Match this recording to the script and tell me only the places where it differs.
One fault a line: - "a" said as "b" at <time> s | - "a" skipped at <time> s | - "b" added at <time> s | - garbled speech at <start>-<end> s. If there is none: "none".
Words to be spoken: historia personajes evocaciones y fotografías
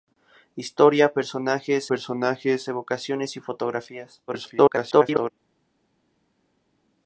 - "personajes" added at 1.9 s
- garbled speech at 4.3-5.3 s